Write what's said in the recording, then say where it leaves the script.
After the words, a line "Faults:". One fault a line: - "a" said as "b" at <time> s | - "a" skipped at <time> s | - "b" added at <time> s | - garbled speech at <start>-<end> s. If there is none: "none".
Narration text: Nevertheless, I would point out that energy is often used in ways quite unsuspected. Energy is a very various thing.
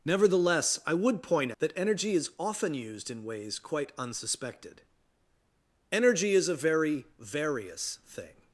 Nevertheless, I would point that energy is often used in ways quite unsuspected. Energy is a very various thing.
Faults:
- "out" skipped at 1.5 s